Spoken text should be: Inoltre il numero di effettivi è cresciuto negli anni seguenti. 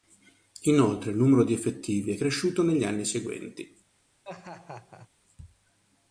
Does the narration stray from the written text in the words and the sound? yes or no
yes